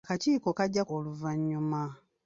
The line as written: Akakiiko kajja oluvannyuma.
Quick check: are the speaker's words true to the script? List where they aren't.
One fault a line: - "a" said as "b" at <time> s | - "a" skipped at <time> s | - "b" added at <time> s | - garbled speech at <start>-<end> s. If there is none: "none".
none